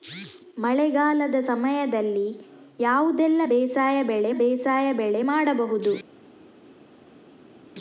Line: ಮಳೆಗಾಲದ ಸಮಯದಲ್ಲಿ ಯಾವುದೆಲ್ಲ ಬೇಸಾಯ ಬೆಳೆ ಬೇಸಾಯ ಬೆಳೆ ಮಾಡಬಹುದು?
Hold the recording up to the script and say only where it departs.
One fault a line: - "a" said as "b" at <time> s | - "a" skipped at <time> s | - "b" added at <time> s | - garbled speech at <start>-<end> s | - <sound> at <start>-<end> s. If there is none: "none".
none